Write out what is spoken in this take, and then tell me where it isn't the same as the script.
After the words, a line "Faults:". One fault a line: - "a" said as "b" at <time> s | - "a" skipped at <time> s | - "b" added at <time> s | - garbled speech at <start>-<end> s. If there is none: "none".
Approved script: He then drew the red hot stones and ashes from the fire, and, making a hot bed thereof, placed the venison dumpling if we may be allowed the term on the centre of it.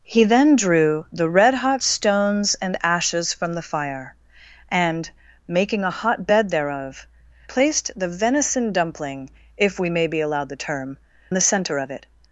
He then drew the red hot stones and ashes from the fire, and, making a hot bed thereof, placed the venison dumpling if we may be allowed the term the centre of it.
Faults:
- "on" skipped at 11.0 s